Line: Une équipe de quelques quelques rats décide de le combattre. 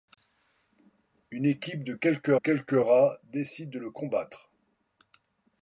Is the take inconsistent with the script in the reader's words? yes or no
no